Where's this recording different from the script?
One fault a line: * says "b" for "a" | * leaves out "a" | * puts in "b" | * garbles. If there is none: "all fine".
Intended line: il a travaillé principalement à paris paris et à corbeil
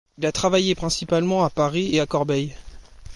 * leaves out "paris"